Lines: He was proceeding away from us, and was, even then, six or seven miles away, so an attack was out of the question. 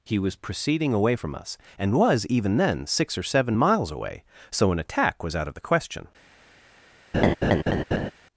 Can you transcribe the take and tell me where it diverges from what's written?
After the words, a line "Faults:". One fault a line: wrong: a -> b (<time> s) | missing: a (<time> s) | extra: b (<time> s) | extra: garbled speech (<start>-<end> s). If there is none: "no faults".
He was proceeding away from us, and was, even then, six or seven miles away, so an attack was out of the question.
Faults:
no faults